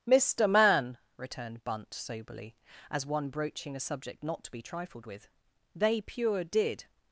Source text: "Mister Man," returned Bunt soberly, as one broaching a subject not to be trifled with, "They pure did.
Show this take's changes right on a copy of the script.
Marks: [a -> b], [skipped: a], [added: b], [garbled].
"Mister Man," returned Bunt soberly, as one broaching a subject not to be trifled with, "They pure did.